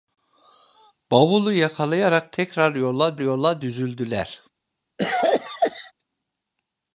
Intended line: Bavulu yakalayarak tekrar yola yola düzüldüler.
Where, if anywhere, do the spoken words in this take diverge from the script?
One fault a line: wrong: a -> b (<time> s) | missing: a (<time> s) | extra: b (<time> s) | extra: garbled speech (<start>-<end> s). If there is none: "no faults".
no faults